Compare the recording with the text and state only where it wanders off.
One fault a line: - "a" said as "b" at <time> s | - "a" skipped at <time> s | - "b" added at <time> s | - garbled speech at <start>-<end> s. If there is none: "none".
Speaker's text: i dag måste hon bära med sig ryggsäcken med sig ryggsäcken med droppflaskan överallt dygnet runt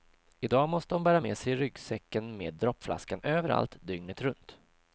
- "sig ryggsäcken med" skipped at 2.5 s